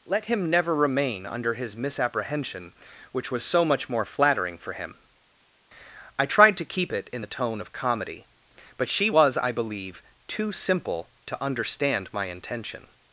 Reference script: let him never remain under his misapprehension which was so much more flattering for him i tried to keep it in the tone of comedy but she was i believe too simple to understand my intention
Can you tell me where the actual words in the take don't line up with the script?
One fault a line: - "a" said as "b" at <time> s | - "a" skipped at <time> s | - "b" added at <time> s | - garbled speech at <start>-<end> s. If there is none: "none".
none